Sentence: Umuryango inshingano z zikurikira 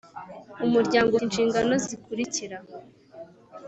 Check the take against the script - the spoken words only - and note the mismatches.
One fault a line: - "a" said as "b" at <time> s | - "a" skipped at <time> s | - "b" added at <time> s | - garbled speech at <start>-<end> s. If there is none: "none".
none